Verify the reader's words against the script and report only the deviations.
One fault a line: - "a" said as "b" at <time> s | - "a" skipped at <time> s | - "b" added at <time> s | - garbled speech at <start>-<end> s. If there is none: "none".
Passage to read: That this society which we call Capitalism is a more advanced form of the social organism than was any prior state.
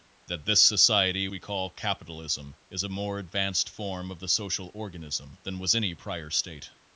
- "which" skipped at 1.3 s